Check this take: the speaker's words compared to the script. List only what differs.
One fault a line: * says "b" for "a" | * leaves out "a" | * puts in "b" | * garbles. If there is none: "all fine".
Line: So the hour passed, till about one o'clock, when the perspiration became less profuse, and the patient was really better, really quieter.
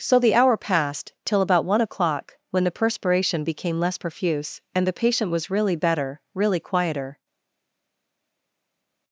all fine